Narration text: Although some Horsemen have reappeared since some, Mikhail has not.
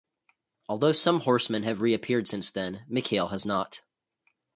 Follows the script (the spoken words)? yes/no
no